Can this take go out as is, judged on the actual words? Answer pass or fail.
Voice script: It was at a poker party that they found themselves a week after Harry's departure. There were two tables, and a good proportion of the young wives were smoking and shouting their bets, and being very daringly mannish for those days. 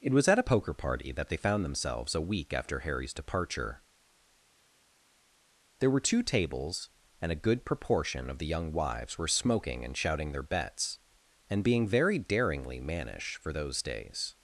pass